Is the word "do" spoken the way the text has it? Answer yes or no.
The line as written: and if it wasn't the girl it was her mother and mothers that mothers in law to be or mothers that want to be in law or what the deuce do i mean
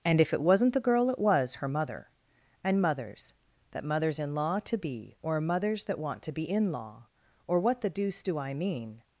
yes